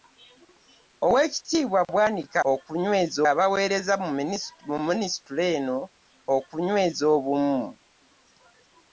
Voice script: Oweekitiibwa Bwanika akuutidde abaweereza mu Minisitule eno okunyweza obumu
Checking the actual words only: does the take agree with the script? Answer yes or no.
no